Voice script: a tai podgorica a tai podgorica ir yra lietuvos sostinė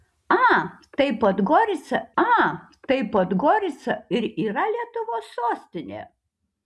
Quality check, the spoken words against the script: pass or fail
pass